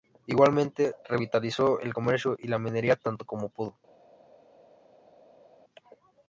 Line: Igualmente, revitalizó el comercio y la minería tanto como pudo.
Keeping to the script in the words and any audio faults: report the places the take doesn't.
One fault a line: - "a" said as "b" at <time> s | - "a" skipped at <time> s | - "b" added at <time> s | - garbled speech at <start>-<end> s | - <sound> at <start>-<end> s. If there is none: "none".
none